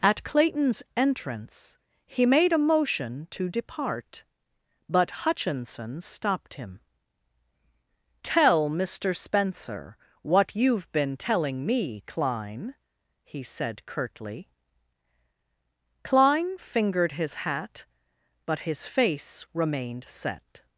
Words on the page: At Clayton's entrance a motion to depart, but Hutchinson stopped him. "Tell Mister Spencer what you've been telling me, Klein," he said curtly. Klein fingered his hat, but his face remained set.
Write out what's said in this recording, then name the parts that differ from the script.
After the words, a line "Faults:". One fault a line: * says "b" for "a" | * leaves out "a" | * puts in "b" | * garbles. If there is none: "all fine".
At Clayton's entrance he made a motion to depart, but Hutchinson stopped him. "Tell Mister Spencer what you've been telling me, Klein," he said curtly. Klein fingered his hat, but his face remained set.
Faults:
* puts in "he made"